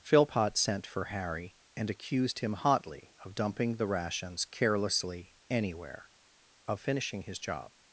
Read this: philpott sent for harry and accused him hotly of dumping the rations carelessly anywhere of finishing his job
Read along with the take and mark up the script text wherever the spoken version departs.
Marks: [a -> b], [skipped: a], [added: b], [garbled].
philpott sent for harry and accused him hotly of dumping the rations carelessly anywhere of finishing his job